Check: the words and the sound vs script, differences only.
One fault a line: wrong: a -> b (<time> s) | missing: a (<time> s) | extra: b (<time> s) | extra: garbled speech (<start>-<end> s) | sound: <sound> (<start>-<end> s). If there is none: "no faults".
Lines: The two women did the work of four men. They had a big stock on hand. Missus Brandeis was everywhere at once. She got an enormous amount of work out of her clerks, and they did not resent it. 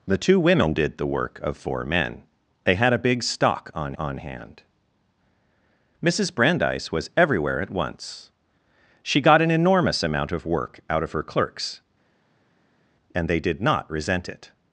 extra: on (4.0 s)